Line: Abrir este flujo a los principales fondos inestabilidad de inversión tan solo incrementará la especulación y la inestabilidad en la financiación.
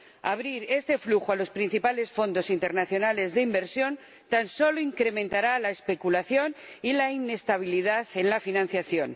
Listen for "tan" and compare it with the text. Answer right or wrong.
right